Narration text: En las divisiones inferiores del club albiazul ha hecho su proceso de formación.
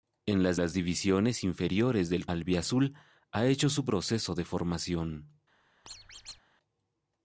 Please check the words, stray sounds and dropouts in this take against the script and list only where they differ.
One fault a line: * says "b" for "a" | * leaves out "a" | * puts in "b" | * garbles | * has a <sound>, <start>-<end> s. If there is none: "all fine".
* puts in "las"
* leaves out "club"
* has a squeak, 5.8-6.4 s